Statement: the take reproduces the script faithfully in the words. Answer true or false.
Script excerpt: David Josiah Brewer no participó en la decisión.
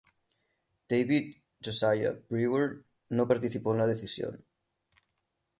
true